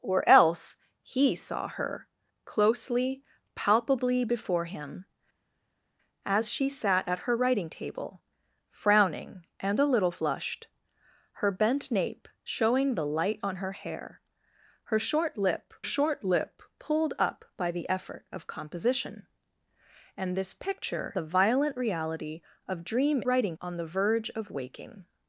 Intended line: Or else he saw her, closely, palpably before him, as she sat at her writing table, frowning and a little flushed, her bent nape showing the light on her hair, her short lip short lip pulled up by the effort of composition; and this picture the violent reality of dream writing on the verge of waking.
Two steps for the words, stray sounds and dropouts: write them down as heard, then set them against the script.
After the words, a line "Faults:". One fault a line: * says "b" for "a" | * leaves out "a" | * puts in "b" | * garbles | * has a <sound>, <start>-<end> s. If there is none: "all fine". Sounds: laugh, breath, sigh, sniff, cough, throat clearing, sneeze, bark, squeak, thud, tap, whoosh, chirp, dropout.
Or else he saw her, closely, palpably before him, as she sat at her writing table, frowning and a little flushed, her bent nape showing the light on her hair, her short lip short lip pulled up by the effort of composition; and this picture the violent reality of dream writing on the verge of waking.
Faults:
all fine